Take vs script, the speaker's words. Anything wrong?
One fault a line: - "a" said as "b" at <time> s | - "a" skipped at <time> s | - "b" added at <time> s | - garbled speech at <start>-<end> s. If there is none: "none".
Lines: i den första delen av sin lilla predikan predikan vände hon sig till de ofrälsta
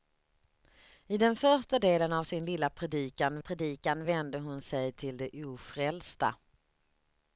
none